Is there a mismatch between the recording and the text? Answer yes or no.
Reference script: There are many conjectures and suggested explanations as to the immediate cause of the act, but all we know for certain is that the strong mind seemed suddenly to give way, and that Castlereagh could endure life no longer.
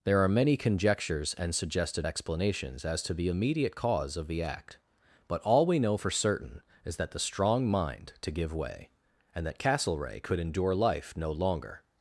yes